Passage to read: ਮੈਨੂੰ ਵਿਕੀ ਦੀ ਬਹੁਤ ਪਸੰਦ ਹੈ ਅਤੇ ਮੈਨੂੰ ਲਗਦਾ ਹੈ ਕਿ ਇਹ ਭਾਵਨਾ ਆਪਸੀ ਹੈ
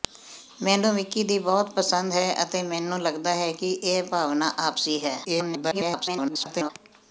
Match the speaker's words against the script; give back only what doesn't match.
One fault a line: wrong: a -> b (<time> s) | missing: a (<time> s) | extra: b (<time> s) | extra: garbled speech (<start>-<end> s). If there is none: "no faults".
extra: garbled speech (5.2-6.7 s)